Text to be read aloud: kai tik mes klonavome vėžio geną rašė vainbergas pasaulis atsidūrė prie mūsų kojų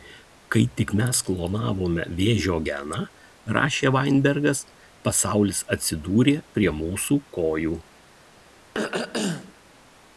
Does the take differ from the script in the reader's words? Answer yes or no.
no